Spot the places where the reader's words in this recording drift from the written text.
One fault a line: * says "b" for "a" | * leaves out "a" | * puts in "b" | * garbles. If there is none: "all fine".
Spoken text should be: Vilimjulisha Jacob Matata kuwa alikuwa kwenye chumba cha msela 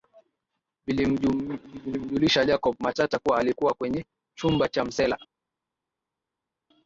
all fine